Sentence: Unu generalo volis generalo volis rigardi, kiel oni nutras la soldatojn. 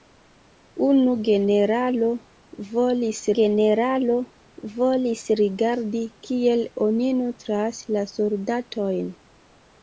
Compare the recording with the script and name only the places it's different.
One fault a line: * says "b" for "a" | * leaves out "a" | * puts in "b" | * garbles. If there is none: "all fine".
all fine